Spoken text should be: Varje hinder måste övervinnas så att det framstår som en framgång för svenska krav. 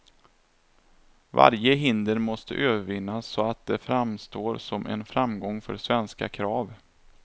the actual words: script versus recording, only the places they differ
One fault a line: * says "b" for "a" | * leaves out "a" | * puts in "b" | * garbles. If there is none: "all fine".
all fine